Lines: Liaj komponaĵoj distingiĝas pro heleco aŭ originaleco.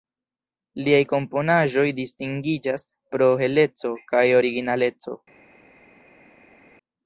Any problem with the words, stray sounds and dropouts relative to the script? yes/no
yes